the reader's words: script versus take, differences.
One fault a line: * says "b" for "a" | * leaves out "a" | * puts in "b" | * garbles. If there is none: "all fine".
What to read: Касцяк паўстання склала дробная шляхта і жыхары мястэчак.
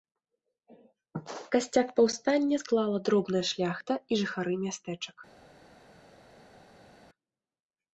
all fine